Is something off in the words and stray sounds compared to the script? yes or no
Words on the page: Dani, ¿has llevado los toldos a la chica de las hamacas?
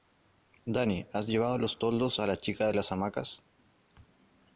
no